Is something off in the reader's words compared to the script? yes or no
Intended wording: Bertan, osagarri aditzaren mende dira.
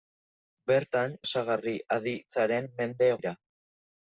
no